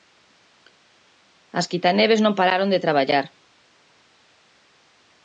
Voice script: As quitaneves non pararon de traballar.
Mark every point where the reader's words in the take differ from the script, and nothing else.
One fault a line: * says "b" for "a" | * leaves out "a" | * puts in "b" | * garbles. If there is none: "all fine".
all fine